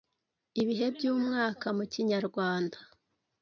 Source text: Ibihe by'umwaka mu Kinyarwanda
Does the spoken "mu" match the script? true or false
true